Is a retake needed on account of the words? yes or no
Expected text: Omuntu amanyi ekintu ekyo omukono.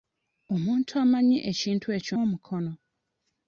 no